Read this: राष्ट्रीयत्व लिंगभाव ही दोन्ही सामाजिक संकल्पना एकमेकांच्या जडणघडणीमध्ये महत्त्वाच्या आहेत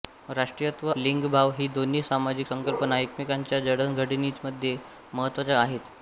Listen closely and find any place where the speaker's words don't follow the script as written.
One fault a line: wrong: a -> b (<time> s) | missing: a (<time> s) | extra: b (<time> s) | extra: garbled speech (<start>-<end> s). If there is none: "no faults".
no faults